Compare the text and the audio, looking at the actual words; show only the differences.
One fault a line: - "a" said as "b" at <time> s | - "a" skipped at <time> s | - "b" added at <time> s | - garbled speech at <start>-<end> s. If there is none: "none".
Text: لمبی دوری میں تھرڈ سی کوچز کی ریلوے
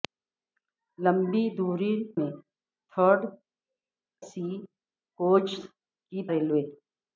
none